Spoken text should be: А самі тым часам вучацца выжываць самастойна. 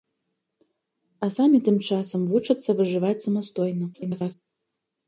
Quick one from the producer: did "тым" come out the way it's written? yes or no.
yes